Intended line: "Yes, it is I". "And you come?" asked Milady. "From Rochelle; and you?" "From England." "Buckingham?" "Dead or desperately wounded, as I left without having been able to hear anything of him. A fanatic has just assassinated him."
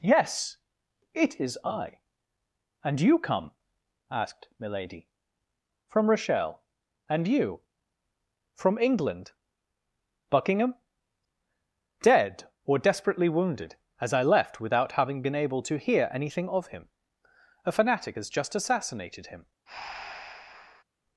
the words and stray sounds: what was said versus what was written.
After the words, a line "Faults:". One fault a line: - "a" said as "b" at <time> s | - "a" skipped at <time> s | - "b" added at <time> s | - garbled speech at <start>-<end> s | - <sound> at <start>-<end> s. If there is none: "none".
"Yes, it is I". "And you come?" asked Milady. "From Rochelle; and you?" "From England." "Buckingham?" "Dead or desperately wounded, as I left without having been able to hear anything of him. A fanatic has just assassinated him."
Faults:
- breath at 19.7-20.8 s